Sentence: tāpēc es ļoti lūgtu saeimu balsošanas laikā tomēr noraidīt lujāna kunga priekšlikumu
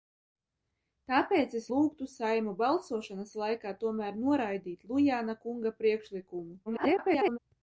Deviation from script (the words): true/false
true